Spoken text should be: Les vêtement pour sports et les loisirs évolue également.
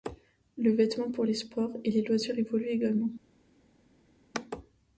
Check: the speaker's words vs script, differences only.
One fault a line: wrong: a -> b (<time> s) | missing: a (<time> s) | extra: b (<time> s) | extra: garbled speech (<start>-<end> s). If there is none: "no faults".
wrong: Les -> Le (0.6 s)
extra: les (1.2 s)